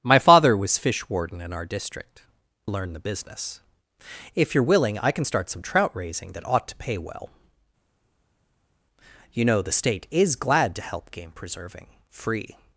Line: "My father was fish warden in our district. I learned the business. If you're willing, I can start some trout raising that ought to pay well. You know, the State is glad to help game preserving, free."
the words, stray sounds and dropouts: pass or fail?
fail